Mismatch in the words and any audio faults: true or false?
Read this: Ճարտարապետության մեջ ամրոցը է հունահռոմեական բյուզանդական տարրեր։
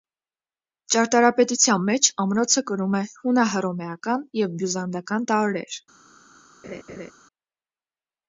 true